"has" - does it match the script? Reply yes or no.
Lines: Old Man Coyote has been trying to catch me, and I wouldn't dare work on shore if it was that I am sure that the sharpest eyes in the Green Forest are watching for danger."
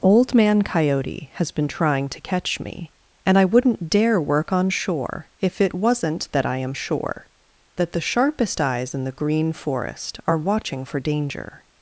yes